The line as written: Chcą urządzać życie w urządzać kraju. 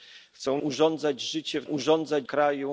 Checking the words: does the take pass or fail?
pass